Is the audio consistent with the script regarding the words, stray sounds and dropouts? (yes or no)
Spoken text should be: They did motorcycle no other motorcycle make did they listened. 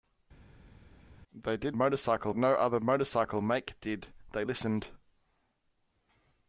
yes